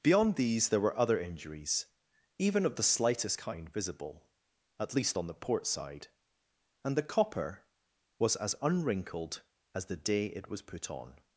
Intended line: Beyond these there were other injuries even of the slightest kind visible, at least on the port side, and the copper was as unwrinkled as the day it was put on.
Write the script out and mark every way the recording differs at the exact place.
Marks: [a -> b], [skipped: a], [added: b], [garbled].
Beyond these there were other injuries even of the slightest kind visible, at least on the port side, and the copper was as unwrinkled as the day it was put on.